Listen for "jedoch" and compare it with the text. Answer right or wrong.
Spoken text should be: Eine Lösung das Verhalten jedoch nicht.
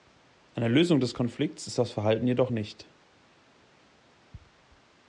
right